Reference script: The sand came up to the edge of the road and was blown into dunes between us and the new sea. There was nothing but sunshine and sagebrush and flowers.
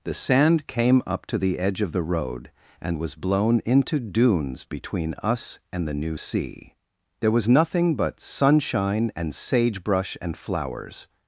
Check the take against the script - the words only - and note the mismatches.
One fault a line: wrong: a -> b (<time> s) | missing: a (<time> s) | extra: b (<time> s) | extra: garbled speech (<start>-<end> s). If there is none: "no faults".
no faults